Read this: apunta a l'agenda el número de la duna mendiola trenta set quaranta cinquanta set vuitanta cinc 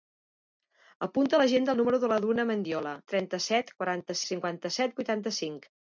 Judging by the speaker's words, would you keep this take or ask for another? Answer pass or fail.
pass